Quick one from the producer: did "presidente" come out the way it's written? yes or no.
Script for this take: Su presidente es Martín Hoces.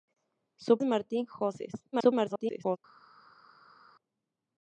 no